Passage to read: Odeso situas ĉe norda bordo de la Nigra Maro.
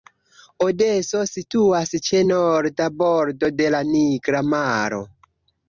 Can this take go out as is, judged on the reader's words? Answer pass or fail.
pass